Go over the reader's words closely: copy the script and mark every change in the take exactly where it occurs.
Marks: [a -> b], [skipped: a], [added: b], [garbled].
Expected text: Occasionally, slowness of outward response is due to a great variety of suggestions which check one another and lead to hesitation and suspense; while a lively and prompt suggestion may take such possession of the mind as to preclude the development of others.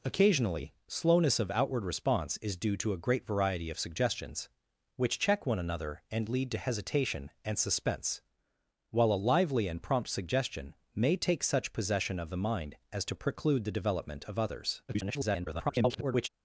Occasionally, slowness of outward response is due to a great variety of suggestions which check one another and lead to hesitation and suspense; while a lively and prompt suggestion may take such possession of the mind as to preclude the development of others. [garbled]